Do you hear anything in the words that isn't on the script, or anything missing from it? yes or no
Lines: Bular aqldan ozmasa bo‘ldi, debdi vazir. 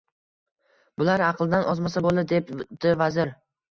no